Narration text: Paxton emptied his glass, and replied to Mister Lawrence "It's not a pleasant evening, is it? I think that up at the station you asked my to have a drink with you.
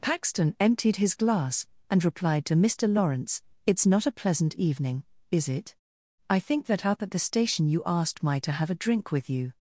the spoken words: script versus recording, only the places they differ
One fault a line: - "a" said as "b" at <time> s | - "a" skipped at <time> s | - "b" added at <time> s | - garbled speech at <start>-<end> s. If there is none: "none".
none